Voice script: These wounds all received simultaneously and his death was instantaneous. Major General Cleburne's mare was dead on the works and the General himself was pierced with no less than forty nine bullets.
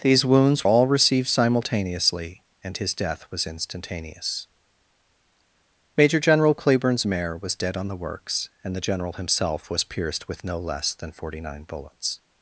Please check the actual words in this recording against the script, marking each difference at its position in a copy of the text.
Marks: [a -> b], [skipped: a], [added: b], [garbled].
These wounds all received simultaneously and his death was instantaneous. Major General Cleburne's mare was dead on the works and the General himself was pierced with no less than forty nine bullets.